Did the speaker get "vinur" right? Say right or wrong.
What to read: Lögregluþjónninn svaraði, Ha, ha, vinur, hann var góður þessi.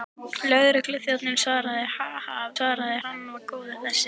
wrong